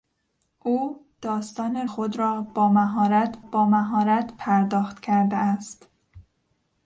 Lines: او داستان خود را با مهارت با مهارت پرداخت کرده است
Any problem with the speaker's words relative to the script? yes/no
no